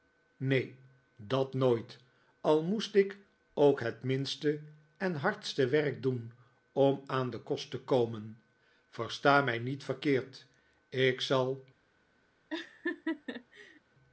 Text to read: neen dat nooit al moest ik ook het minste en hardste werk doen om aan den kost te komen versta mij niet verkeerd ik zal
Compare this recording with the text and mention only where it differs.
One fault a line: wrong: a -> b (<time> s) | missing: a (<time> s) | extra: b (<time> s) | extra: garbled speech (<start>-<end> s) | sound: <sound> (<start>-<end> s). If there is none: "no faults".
sound: laugh (12.5-13.8 s)